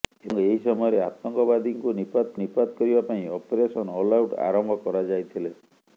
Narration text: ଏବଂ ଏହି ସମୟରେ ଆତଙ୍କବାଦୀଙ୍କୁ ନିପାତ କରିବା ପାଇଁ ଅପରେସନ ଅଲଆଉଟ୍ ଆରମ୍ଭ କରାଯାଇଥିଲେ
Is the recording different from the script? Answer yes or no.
yes